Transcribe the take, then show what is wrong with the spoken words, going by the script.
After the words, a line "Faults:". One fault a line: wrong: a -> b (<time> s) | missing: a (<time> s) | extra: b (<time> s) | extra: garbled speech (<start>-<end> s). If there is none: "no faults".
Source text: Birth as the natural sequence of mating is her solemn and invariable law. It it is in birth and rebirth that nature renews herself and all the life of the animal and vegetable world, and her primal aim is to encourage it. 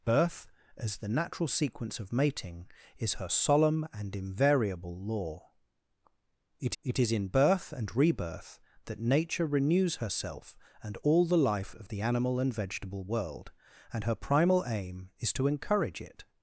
Birth as the natural sequence of mating is her solemn and invariable law. It it is in birth and rebirth that nature renews herself and all the life of the animal and vegetable world, and her primal aim is to encourage it.
Faults:
no faults